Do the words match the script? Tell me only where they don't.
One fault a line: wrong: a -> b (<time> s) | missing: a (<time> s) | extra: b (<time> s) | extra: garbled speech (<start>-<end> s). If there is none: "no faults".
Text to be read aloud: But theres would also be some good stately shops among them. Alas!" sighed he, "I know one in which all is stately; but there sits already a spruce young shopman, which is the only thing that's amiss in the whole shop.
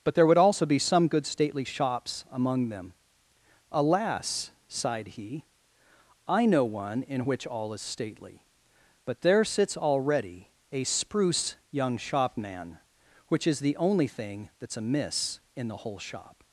wrong: theres -> there (0.1 s)